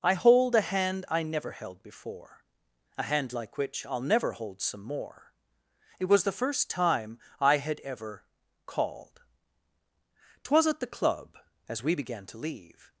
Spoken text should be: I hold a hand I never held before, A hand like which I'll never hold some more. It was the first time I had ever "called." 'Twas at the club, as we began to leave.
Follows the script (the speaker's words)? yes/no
yes